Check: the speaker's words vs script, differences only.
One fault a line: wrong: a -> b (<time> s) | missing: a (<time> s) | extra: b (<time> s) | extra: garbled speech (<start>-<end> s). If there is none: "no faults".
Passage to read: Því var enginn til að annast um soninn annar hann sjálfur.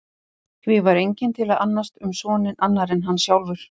extra: en (3.0 s)